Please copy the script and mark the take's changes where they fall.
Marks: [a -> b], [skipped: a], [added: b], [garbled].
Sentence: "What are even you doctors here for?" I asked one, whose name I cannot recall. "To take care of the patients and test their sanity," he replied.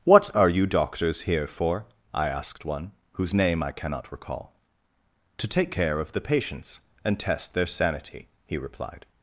"What are [skipped: even] you doctors here for?" I asked one, whose name I cannot recall. "To take care of the patients and test their sanity," he replied.